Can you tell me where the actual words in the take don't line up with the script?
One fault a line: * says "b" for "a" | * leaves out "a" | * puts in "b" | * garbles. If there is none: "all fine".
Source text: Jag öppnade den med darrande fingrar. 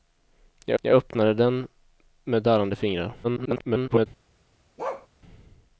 * puts in "jag"
* garbles